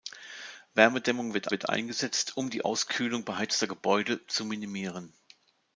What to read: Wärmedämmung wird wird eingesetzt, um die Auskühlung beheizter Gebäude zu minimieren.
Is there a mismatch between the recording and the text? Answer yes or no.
no